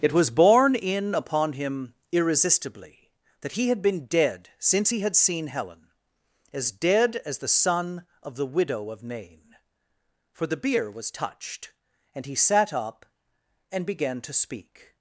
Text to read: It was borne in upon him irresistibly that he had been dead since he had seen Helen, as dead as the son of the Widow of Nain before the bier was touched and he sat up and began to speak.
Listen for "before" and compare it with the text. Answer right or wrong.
wrong